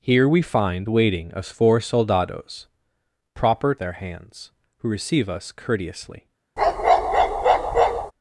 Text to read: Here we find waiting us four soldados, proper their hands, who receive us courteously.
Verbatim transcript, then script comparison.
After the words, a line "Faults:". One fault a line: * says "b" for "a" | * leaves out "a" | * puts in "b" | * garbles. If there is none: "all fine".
Here we find waiting us four soldados, proper their hands, who receive us courteously.
Faults:
all fine